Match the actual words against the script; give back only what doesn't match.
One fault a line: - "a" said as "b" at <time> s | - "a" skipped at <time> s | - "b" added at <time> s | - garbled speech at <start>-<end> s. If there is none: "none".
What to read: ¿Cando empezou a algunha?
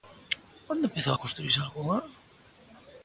- "Cando" said as "Onde" at 0.7 s
- "construírse" added at 1.2 s